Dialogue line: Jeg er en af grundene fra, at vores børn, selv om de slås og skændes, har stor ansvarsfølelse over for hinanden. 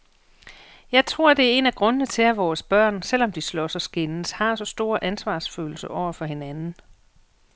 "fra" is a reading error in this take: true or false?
true